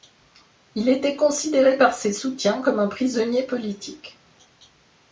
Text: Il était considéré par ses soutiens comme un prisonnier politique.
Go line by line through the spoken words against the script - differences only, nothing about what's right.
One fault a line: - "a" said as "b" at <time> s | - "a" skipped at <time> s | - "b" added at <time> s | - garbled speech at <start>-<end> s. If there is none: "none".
none